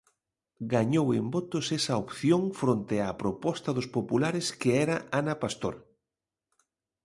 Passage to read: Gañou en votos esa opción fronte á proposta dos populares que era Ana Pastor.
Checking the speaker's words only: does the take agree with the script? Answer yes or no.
yes